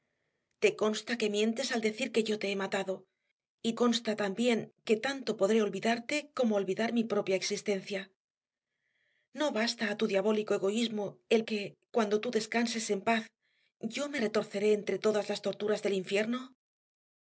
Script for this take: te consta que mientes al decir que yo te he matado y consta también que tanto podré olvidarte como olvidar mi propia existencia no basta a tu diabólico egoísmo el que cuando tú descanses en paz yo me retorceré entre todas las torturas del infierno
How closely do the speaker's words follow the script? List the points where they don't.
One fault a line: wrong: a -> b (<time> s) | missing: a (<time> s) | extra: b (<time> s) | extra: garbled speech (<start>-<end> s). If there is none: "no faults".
no faults